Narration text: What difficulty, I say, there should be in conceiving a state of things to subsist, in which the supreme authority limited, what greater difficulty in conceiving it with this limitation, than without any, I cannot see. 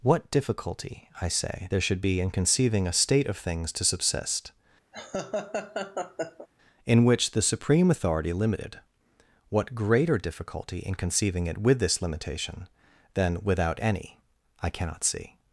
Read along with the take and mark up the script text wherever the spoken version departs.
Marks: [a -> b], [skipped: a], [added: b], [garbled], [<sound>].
What difficulty, I say, there should be in conceiving a state of things to subsist, [laugh] in which the supreme authority limited, what greater difficulty in conceiving it with this limitation, than without any, I cannot see.